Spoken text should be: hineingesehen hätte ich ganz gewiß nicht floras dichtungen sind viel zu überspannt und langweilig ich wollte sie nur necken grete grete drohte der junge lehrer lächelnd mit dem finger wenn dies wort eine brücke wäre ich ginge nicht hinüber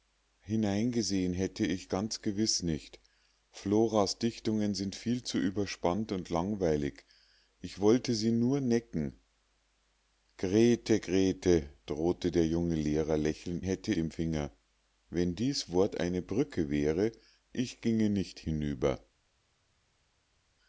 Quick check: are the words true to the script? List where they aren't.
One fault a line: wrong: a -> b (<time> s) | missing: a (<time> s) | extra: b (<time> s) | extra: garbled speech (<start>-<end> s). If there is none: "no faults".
wrong: mit -> hätte (13.6 s)